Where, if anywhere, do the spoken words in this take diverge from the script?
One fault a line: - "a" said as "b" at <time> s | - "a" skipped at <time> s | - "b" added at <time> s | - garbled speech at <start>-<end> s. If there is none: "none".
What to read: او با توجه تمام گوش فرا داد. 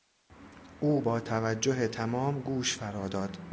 none